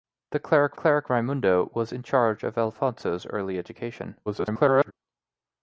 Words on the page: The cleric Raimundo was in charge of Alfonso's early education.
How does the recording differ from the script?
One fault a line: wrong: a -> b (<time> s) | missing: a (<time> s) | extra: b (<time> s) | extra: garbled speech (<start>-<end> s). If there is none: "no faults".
extra: cleric (0.7 s)
extra: garbled speech (4.3-4.9 s)